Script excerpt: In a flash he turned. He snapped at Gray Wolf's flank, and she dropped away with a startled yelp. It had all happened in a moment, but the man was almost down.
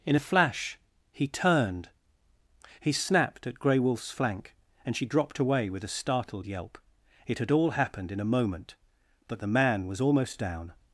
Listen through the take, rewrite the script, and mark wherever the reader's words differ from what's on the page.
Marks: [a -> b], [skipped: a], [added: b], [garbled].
In a flash he turned. He snapped at Gray Wolf's flank, and she dropped away with a startled yelp. It had all happened in a moment, but the man was almost down.